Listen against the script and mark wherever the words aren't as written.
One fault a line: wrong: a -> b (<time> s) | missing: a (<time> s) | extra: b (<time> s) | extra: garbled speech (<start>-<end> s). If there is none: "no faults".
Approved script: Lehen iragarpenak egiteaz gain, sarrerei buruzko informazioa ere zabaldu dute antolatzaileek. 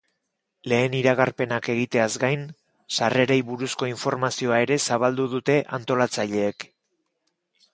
no faults